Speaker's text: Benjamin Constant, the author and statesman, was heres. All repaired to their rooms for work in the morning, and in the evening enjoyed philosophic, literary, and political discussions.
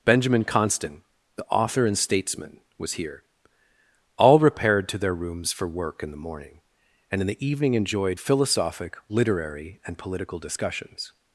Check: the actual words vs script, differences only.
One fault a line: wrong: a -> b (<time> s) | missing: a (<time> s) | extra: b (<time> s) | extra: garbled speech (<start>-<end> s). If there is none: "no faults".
wrong: heres -> here (2.9 s)